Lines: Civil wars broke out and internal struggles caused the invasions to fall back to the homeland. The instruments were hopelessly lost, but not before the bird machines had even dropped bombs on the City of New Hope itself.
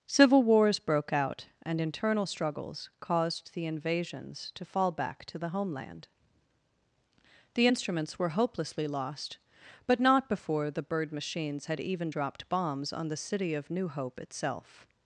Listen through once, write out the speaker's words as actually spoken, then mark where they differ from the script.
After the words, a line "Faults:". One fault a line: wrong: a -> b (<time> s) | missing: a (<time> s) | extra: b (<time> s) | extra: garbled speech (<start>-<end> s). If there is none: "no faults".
Civil wars broke out and internal struggles caused the invasions to fall back to the homeland. The instruments were hopelessly lost, but not before the bird machines had even dropped bombs on the City of New Hope itself.
Faults:
no faults